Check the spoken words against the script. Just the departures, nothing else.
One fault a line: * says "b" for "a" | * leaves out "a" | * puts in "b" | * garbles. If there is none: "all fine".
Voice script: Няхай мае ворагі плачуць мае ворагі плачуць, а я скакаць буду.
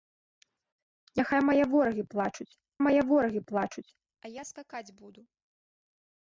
all fine